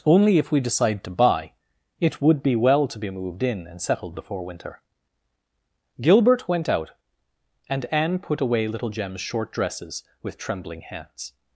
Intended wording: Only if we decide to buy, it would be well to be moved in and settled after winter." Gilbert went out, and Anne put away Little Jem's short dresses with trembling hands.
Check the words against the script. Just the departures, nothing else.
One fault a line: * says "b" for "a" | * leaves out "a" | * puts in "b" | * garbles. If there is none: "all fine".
* says "before" for "after"